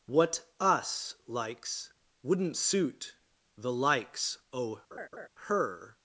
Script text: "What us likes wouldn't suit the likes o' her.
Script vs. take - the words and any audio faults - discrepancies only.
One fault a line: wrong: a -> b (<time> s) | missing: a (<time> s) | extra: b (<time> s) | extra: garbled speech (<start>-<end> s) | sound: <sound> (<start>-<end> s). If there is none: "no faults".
sound: laugh (4.9-5.3 s)